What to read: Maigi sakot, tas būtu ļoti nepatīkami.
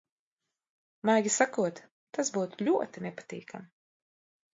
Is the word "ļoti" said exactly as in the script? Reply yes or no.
yes